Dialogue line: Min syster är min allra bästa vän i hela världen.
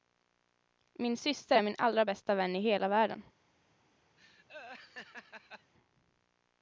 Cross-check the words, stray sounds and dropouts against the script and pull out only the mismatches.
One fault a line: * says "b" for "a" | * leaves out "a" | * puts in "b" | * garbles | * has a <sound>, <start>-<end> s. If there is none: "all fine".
* has a laugh, 4.2-5.7 s